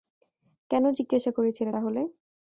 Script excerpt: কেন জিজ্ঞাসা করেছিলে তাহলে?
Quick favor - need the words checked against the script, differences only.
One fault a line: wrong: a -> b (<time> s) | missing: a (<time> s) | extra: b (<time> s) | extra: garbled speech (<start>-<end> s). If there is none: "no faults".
no faults